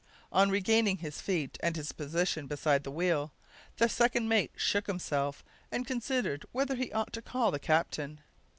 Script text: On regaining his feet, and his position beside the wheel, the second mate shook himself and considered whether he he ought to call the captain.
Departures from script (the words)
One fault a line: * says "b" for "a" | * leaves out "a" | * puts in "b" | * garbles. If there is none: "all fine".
* leaves out "he"